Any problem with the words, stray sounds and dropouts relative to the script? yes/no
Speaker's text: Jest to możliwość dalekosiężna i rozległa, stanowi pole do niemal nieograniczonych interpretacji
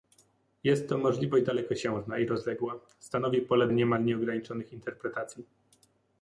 yes